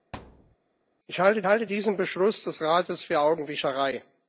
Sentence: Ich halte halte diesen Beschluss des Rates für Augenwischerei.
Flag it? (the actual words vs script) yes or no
no